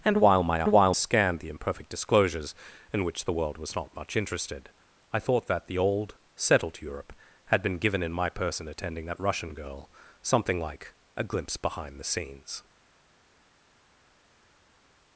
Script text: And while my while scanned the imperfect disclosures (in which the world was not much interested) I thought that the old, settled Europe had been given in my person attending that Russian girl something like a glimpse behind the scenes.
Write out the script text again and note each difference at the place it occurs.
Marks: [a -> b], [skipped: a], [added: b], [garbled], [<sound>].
And while my while scanned the imperfect disclosures (in which the world was not much interested) I thought that the old, settled Europe had been given in my person attending that Russian girl something like a glimpse behind the scenes.